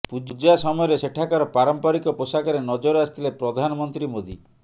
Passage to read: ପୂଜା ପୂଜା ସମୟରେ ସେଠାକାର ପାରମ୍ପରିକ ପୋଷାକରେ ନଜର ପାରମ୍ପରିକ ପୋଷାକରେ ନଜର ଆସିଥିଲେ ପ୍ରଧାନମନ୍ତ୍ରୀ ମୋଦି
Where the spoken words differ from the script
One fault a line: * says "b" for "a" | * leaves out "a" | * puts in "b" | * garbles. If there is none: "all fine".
* leaves out "ପୂଜା"
* leaves out "ପାରମ୍ପରିକ ପୋଷାକରେ ନଜର"